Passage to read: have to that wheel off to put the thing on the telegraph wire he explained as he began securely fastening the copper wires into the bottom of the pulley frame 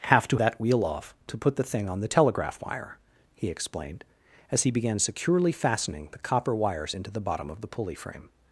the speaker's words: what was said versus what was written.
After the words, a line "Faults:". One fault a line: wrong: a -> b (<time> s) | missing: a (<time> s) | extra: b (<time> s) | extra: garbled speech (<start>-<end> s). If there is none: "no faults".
have to that wheel off to put the thing on the telegraph wire he explained as he began securely fastening the copper wires into the bottom of the pulley frame
Faults:
no faults